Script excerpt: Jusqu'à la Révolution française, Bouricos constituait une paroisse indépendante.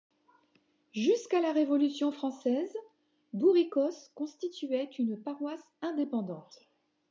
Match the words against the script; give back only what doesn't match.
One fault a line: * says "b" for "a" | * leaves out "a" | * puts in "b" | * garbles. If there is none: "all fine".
all fine